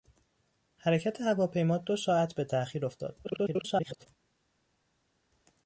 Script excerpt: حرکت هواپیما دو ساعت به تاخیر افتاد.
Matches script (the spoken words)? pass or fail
fail